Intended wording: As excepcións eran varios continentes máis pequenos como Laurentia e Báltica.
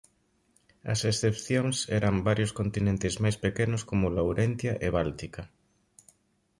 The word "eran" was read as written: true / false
true